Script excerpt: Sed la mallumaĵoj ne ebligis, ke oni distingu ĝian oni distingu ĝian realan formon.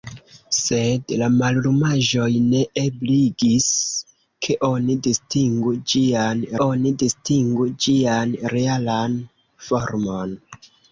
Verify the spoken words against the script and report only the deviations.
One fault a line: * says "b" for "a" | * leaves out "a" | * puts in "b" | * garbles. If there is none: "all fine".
all fine